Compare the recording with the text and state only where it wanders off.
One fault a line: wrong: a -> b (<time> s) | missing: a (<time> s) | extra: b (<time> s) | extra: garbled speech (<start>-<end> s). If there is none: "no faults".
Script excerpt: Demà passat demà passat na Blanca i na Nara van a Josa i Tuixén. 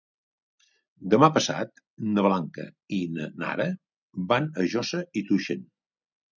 missing: demà passat (1.8 s)